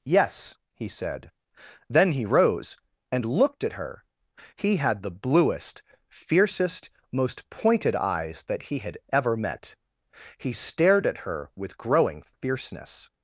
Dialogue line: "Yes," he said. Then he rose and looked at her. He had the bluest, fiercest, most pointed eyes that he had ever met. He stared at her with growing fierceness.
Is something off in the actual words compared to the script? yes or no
no